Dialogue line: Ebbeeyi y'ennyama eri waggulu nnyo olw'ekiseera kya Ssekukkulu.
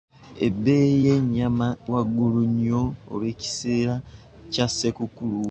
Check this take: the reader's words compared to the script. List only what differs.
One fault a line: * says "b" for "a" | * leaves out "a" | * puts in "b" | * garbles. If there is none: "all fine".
* leaves out "eri"